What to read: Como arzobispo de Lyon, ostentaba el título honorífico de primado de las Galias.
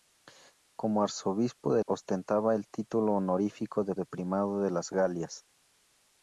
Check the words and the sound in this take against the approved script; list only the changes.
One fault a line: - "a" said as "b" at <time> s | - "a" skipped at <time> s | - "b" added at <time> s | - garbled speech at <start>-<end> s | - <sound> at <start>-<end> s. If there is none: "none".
- "Lyon" skipped at 1.8 s
- "de" added at 3.9 s